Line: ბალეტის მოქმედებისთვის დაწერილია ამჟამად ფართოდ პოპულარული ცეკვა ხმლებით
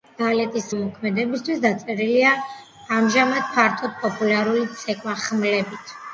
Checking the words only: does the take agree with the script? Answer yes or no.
yes